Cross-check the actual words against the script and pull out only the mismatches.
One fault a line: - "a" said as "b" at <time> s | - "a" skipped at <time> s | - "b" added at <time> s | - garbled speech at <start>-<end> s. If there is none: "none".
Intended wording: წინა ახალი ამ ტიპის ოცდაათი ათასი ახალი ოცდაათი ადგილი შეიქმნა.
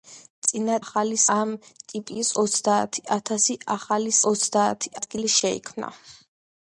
none